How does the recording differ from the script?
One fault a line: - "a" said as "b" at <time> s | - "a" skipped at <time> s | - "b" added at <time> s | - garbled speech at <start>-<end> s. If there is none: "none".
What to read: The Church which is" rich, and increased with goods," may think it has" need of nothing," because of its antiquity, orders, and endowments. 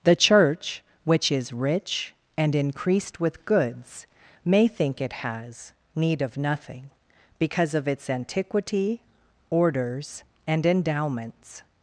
none